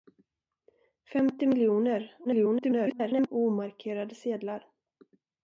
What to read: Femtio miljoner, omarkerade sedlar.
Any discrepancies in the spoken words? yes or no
yes